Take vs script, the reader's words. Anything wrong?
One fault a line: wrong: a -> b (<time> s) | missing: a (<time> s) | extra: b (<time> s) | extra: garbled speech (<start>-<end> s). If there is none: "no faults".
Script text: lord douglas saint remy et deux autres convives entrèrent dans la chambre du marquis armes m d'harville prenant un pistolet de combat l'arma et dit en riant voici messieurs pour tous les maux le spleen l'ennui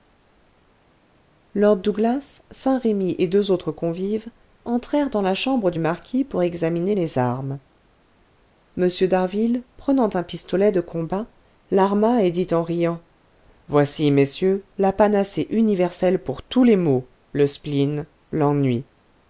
extra: pour examiner les (6.2 s)
extra: la panacée universelle (14.8 s)